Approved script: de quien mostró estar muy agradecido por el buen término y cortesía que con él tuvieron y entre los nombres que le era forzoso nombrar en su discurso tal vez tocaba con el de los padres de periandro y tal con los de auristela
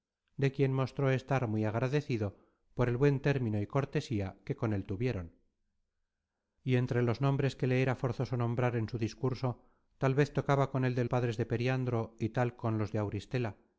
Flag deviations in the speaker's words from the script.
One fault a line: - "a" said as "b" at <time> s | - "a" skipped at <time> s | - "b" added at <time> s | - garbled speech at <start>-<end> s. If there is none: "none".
- "los" skipped at 11.1 s